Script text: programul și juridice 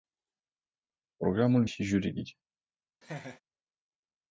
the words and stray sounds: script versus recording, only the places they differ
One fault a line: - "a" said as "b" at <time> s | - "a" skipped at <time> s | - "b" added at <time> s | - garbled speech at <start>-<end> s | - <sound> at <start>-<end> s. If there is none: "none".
- laugh at 3.0-3.4 s